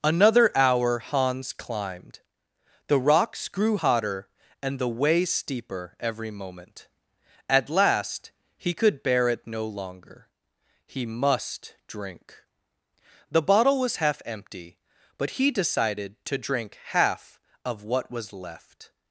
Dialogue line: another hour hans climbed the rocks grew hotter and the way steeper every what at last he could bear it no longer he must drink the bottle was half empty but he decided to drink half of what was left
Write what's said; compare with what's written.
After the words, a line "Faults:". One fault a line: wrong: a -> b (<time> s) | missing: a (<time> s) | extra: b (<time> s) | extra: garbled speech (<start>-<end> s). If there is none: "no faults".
another hour hans climbed the rocks grew hotter and the way steeper every moment at last he could bear it no longer he must drink the bottle was half empty but he decided to drink half of what was left
Faults:
wrong: what -> moment (6.3 s)